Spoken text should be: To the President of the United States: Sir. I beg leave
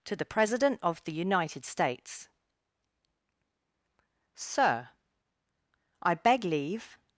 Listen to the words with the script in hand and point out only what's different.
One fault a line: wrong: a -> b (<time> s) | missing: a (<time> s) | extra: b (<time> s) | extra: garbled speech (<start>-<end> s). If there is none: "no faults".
no faults